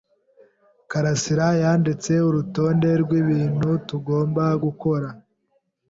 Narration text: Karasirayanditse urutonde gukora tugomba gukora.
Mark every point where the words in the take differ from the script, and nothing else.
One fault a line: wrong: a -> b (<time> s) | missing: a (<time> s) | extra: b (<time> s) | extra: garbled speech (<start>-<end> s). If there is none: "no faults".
wrong: gukora -> rwibintu (3.0 s)